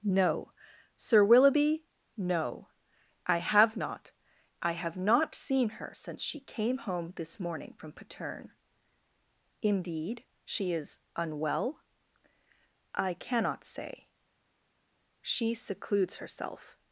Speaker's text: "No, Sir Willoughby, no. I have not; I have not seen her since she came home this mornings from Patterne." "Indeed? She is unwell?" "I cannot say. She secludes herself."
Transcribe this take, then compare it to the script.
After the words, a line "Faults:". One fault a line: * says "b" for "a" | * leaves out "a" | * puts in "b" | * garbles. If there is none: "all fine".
"No, Sir Willoughby, no. I have not; I have not seen her since she came home this morning from Patterne." "Indeed? She is unwell?" "I cannot say. She secludes herself."
Faults:
* says "morning" for "mornings"